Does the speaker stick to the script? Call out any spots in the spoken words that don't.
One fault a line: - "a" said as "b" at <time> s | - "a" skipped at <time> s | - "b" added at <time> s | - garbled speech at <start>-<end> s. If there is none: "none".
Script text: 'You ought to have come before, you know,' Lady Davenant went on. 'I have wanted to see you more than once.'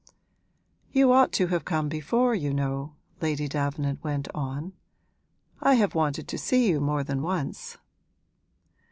none